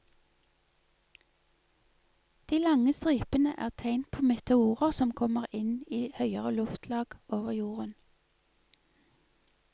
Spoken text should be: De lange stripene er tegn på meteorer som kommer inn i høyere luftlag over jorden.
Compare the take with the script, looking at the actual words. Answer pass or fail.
pass